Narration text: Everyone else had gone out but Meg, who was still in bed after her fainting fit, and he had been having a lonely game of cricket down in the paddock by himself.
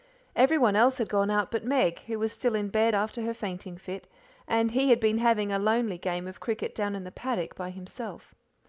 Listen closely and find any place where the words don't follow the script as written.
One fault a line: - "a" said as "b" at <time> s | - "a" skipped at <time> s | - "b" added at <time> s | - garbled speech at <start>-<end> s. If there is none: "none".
none